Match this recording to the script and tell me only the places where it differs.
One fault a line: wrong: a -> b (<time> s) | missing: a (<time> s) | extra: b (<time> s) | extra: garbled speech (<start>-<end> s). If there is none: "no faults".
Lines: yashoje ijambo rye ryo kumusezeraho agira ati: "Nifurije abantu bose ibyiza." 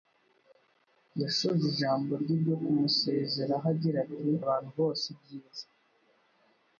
missing: Nifurije (4.3 s)